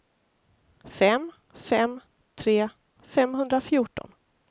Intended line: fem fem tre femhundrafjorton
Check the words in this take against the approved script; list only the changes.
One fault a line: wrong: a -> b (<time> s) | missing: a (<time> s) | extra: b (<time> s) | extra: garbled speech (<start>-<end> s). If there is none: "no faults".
no faults